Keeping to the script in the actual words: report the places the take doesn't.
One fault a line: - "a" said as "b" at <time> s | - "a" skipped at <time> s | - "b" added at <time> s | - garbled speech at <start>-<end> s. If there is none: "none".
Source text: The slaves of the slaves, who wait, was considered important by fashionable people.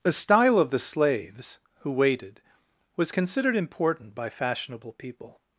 - "slaves" said as "style" at 0.1 s
- "wait" said as "waited" at 1.9 s